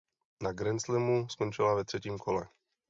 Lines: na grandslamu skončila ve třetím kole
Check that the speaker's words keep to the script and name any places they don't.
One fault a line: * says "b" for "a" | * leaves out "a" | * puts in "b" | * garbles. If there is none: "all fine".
all fine